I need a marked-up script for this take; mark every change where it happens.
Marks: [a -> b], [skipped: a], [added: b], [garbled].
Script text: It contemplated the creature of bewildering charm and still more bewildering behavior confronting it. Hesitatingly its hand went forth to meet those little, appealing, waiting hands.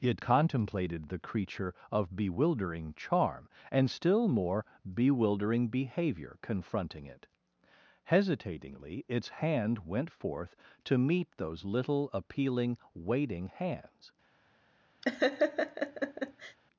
It contemplated the creature of bewildering charm and still more bewildering behavior confronting it. Hesitatingly its hand went forth to meet those little, appealing, waiting hands.